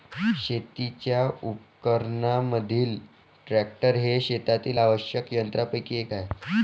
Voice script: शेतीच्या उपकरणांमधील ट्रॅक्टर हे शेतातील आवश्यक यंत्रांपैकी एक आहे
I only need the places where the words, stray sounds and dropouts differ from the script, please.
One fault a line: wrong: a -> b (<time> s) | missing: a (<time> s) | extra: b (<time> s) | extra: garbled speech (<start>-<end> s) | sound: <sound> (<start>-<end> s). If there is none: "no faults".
no faults